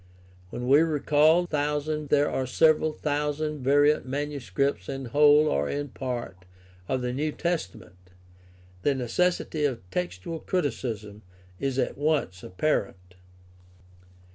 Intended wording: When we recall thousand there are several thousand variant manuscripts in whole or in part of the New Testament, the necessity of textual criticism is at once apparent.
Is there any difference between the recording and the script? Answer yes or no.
no